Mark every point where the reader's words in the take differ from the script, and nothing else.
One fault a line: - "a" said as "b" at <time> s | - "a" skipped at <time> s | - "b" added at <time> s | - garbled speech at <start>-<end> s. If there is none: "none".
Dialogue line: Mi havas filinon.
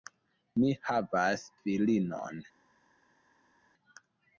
none